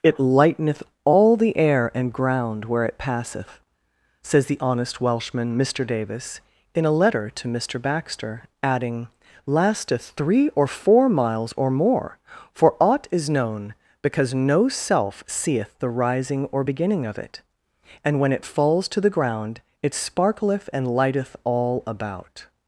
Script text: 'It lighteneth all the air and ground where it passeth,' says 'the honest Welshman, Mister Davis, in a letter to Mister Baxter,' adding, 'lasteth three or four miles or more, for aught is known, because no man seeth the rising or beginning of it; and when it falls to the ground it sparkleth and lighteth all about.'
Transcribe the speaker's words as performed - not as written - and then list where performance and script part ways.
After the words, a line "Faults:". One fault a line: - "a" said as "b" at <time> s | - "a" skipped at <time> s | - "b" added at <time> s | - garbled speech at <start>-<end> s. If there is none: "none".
'It lighteneth all the air and ground where it passeth,' says 'the honest Welshman, Mister Davis, in a letter to Mister Baxter,' adding, 'lasteth three or four miles or more, for aught is known, because no self seeth the rising or beginning of it; and when it falls to the ground it sparkleth and lighteth all about.'
Faults:
- "man" said as "self" at 14.7 s